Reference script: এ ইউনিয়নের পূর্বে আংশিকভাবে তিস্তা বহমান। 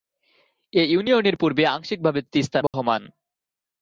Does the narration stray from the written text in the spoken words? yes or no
no